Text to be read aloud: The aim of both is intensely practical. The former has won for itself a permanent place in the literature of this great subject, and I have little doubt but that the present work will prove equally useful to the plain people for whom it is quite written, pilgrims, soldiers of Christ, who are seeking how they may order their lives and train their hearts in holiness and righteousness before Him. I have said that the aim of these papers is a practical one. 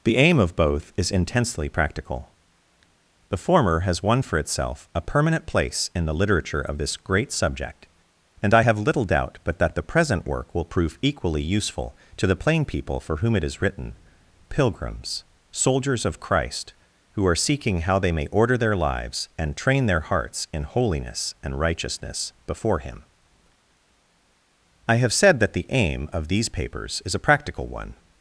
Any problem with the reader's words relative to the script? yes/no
yes